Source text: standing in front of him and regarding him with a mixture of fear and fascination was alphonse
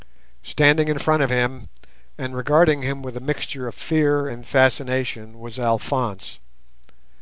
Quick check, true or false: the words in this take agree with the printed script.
true